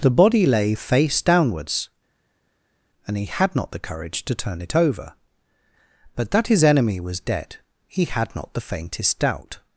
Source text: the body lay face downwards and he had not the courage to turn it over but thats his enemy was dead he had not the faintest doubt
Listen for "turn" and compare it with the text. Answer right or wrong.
right